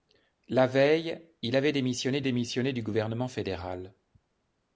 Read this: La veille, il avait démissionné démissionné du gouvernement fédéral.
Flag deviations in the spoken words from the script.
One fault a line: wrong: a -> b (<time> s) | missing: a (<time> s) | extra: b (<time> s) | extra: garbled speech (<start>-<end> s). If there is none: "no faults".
no faults